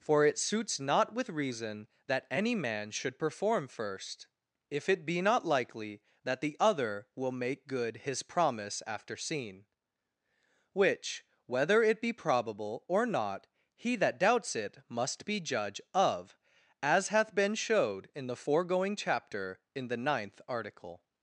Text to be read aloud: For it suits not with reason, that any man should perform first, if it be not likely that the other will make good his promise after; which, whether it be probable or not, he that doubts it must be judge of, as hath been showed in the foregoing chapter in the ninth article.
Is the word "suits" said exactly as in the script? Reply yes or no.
yes